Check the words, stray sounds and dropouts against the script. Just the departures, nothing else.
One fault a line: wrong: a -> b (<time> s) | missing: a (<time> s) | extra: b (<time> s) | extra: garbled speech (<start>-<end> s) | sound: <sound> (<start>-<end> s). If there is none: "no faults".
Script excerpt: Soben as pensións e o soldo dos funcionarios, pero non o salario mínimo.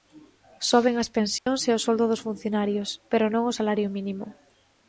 sound: dropout (1.4-1.5 s)